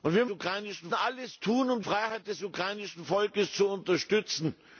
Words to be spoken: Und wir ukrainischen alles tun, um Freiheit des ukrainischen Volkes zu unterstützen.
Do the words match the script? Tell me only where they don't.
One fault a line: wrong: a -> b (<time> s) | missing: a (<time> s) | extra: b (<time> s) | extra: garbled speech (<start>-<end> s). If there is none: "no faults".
no faults